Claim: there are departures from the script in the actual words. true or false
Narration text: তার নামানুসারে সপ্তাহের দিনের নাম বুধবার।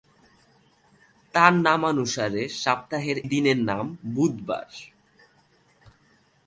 false